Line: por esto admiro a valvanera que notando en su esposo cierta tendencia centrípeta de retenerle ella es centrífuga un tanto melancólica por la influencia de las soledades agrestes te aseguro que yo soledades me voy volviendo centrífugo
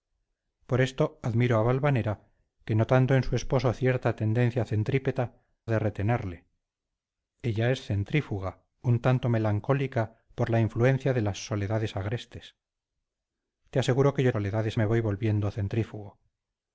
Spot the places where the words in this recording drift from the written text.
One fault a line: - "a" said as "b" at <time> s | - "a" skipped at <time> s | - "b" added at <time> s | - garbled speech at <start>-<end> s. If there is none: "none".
none